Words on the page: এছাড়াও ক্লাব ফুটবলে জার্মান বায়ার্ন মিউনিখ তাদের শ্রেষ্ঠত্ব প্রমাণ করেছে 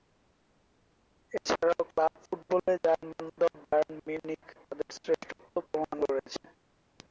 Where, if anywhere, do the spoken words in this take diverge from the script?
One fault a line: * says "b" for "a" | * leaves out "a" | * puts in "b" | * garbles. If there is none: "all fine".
* puts in "দল"